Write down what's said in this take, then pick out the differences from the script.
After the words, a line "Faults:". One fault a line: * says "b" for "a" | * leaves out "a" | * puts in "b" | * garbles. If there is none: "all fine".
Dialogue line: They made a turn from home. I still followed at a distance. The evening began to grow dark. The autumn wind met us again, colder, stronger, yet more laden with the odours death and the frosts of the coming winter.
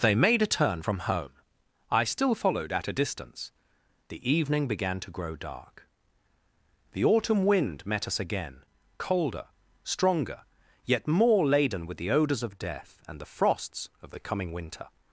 They made a turn from home. I still followed at a distance. The evening began to grow dark. The autumn wind met us again, colder, stronger, yet more laden with the odours of death and the frosts of the coming winter.
Faults:
* puts in "of"